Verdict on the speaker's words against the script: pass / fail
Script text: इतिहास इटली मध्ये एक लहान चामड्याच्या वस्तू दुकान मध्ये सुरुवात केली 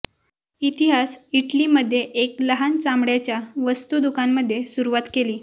pass